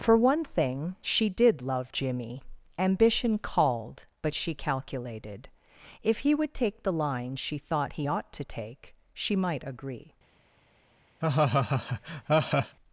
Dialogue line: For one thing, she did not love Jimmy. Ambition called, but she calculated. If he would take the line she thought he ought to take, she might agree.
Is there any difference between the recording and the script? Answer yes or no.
yes